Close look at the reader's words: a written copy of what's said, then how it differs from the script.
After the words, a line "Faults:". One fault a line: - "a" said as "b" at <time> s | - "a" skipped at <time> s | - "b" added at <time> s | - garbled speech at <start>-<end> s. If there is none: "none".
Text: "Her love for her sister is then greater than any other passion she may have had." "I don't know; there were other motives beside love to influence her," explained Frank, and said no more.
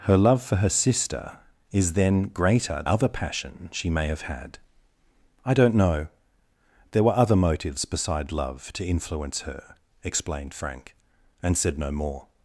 "Her love for her sister is then greater other passion she may have had." "I don't know; there were other motives beside love to influence her," explained Frank, and said no more.
Faults:
- "than any" skipped at 2.8 s